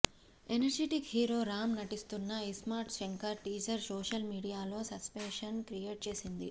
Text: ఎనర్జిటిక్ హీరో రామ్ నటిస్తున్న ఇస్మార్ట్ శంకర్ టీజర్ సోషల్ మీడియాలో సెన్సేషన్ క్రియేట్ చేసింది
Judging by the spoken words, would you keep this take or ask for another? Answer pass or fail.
pass